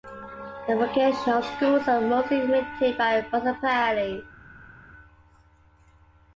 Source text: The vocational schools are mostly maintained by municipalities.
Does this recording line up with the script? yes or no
yes